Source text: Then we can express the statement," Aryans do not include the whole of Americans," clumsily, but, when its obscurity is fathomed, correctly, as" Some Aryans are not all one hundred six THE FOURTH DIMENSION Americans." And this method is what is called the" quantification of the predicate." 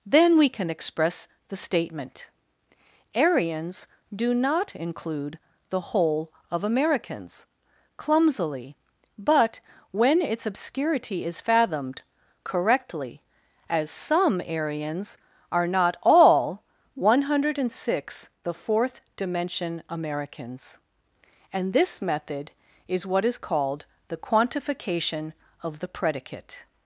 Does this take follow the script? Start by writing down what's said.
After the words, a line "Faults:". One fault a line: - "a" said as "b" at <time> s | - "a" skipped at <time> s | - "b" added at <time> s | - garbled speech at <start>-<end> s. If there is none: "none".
Then we can express the statement," Aryans do not include the whole of Americans," clumsily, but, when its obscurity is fathomed, correctly, as" Some Aryans are not all one hundred six THE FOURTH DIMENSION Americans." And this method is what is called the" quantification of the predicate."
Faults:
none